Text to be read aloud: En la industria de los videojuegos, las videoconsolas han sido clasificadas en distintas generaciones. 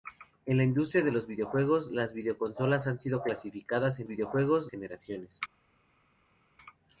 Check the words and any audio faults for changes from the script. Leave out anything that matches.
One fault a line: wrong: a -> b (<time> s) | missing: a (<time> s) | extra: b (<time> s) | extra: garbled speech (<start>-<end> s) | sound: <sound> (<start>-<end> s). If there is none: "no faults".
wrong: distintas -> videojuegos (4.1 s)